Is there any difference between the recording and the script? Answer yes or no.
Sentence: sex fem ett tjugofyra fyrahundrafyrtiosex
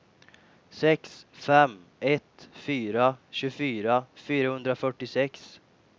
yes